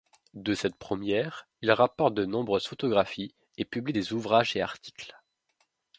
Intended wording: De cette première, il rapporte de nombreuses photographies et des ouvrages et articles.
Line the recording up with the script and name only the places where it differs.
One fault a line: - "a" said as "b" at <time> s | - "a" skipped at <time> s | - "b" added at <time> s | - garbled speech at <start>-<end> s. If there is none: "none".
- "publie" added at 3.6 s